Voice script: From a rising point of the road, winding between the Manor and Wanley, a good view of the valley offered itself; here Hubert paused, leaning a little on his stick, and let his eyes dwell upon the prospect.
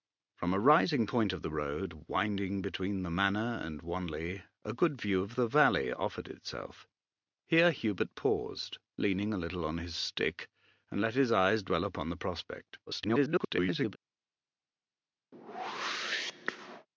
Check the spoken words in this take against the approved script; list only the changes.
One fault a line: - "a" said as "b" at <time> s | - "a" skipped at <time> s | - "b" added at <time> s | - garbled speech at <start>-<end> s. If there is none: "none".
- garbled speech at 12.9-14.0 s